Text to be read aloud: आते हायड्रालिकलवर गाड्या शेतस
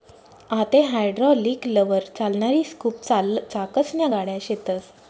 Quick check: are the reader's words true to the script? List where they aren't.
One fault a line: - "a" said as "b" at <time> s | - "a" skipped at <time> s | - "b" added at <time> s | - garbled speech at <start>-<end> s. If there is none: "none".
- "चालणारी स्कूप चाकसन्या" added at 2.2 s